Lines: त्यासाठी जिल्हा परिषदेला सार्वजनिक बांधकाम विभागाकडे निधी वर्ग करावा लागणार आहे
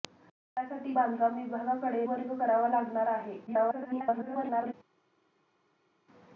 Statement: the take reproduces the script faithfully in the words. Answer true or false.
false